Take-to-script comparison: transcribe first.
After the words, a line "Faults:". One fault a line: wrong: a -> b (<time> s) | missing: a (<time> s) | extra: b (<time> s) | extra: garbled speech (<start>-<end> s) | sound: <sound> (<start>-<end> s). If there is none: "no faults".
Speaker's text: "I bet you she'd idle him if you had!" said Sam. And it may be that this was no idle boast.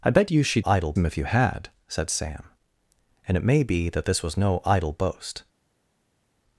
"I bet you she'd idle him if you had!" said Sam. And it may be that this was no idle boast.
Faults:
no faults